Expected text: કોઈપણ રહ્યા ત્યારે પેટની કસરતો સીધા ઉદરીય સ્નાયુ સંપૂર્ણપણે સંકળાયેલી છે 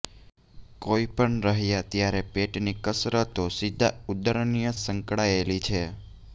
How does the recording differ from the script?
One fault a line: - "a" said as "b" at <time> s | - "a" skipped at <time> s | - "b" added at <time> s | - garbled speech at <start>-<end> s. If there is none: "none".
- "સ્નાયુ સંપૂર્ણપણે" skipped at 4.7 s